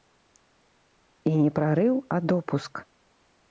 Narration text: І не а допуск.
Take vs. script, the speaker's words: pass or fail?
fail